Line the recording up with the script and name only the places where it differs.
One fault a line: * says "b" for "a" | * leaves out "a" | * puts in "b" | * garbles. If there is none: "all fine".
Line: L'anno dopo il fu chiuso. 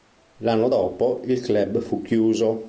* puts in "club"